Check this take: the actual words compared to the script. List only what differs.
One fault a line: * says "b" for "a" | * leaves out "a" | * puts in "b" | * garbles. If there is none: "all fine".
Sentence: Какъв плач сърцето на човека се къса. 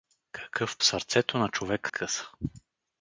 * leaves out "плач"
* leaves out "се"